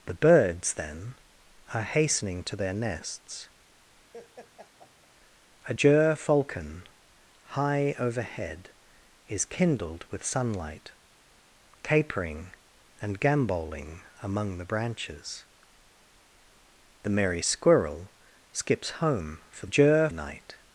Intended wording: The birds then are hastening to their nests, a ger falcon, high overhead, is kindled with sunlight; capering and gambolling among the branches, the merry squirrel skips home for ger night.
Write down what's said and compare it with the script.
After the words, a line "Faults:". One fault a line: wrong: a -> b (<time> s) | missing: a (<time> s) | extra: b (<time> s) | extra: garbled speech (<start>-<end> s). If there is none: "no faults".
The birds then are hastening to their nests, a ger falcon, high overhead, is kindled with sunlight; capering and gambolling among the branches, the merry squirrel skips home for ger night.
Faults:
no faults